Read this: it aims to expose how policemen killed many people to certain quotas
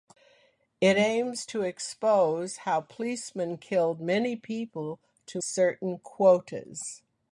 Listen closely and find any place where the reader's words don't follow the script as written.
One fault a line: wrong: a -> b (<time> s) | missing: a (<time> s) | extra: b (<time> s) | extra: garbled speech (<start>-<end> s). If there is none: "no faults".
no faults